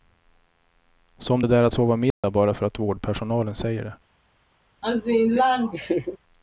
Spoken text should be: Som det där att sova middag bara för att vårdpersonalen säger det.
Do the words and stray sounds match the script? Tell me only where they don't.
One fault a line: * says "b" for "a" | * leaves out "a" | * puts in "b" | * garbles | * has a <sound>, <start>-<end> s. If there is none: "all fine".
* has a dropout, 2.1-2.2 s
* has a laugh, 4.8-6.2 s